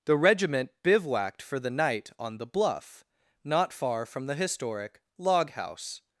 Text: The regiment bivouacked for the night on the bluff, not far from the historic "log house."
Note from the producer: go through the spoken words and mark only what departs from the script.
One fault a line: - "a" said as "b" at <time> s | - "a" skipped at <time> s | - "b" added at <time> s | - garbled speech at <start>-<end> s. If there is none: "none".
none